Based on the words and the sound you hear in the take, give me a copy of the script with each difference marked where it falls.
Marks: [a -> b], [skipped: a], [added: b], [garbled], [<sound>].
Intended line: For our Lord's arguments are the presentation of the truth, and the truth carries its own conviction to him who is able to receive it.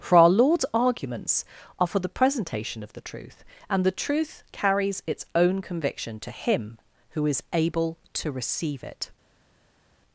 For our Lord's arguments are [added: for] the presentation of the truth, and the truth carries its own conviction to him who is able to receive it.